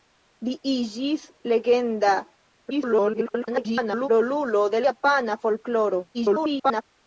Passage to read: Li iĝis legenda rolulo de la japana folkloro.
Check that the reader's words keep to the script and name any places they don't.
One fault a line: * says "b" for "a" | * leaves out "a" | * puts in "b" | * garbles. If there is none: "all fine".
* garbles
* leaves out "la"
* garbles